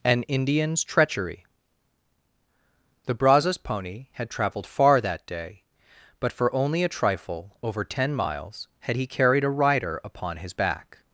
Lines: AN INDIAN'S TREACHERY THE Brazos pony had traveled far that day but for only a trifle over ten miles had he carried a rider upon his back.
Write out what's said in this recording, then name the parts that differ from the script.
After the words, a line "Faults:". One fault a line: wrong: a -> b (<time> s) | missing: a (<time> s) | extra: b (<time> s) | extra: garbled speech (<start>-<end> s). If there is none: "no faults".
AN INDIAN'S TREACHERY THE Brazos pony had traveled far that day but for only a trifle over ten miles had he carried a rider upon his back.
Faults:
no faults